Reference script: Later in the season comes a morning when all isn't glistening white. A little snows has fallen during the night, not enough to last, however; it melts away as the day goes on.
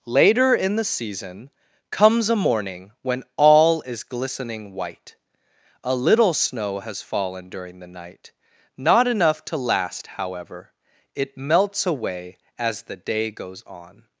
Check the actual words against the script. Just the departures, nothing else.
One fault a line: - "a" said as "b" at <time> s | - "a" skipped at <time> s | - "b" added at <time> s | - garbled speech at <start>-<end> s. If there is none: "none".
- "isn't" said as "is" at 3.8 s
- "snows" said as "snow" at 6.3 s